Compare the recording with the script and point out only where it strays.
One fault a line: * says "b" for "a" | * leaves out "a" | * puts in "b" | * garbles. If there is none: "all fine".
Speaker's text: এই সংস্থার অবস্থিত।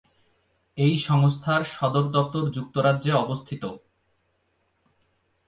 * puts in "সদর দপ্তর যুক্তরাজ্যে"